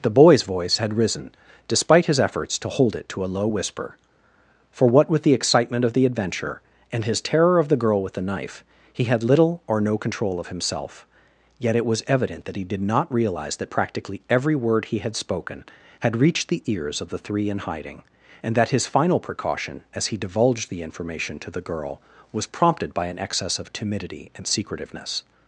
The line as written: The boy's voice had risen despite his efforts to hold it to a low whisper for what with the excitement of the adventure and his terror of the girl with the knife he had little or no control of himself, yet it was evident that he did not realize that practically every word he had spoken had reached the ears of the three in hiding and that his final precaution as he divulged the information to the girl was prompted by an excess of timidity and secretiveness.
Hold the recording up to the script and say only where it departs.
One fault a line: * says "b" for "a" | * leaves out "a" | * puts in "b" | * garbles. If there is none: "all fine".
all fine